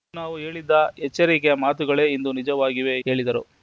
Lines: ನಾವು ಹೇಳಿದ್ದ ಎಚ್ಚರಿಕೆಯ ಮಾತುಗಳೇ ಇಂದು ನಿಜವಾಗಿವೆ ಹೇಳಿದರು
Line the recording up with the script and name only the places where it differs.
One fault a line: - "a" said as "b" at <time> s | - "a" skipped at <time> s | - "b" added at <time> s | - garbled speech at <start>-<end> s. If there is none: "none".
none